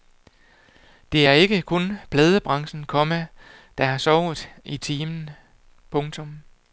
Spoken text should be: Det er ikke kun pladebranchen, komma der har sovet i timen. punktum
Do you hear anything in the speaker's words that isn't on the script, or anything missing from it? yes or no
no